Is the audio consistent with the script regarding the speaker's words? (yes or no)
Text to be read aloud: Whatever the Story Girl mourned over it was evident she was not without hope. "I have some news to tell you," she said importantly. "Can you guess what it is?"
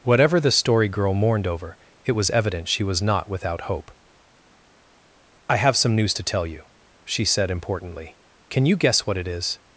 yes